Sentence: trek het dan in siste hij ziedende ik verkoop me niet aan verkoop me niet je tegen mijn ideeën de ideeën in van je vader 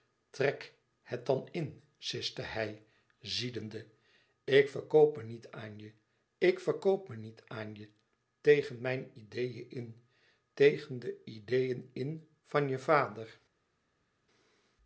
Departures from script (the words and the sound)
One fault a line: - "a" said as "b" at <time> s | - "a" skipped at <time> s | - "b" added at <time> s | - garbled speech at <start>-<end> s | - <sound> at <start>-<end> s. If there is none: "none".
- "je ik" added at 5.8 s
- "aan" added at 7.5 s
- "in tegen" added at 9.7 s